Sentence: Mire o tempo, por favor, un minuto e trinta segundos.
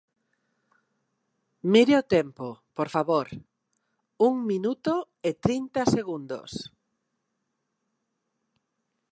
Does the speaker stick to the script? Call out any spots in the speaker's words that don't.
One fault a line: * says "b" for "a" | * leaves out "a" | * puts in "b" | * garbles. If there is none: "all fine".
all fine